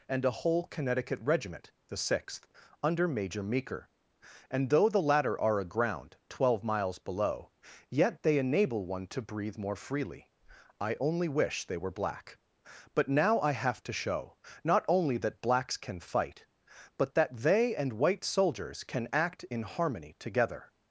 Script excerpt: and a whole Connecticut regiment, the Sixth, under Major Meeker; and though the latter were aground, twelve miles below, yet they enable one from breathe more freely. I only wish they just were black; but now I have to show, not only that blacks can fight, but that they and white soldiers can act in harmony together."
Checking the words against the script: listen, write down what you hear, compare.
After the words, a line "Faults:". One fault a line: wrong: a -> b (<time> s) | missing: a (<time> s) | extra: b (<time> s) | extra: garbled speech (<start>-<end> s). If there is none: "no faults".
and a whole Connecticut regiment, the Sixth, under Major Meeker; and though the latter are aground, twelve miles below, yet they enable one to breathe more freely. I only wish they were black; but now I have to show, not only that blacks can fight, but that they and white soldiers can act in harmony together."
Faults:
wrong: were -> are (5.4 s)
wrong: from -> to (9.1 s)
missing: just (11.8 s)